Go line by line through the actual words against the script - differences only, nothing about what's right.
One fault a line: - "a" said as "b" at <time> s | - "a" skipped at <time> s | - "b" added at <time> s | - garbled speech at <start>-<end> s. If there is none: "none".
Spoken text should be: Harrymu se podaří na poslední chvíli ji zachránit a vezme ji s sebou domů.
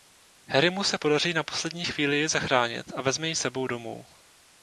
none